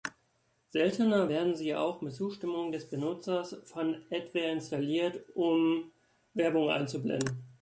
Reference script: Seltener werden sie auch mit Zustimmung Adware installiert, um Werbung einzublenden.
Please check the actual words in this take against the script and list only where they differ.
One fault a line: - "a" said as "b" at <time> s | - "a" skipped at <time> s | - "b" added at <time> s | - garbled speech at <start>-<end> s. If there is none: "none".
- "des Benutzers von" added at 2.7 s